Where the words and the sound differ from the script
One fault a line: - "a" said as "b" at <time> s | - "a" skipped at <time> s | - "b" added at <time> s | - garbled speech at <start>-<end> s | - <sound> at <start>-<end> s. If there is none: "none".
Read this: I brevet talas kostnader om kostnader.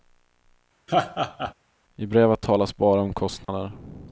- laugh at 0.9-1.5 s
- "kostnader" said as "bara" at 2.8 s
- dropout at 3.4-3.5 s